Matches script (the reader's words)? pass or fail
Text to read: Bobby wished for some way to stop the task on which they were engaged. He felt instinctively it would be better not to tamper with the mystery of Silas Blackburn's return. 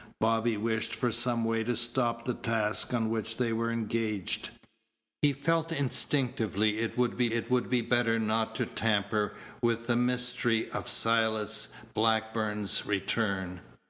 fail